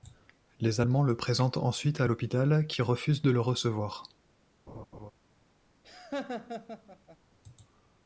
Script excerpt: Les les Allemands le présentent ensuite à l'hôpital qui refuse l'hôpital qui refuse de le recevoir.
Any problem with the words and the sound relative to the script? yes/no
yes